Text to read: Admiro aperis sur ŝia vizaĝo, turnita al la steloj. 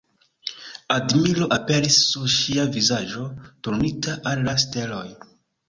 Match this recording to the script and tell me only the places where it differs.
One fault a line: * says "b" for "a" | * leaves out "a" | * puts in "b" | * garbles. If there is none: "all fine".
all fine